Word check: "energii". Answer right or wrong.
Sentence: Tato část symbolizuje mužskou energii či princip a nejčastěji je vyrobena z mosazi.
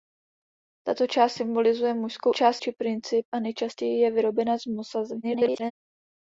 wrong